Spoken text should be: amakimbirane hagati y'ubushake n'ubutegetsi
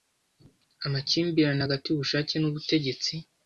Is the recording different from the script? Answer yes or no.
no